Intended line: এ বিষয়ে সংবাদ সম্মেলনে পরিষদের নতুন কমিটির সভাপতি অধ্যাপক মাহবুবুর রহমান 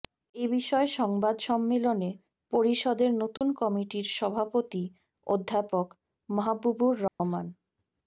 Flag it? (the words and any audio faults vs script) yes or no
yes